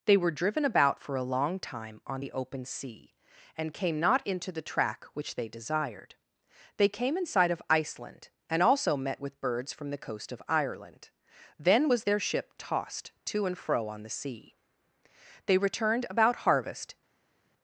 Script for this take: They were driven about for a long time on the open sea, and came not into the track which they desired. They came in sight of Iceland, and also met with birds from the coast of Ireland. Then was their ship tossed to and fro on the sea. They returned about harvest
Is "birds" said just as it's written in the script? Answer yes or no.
yes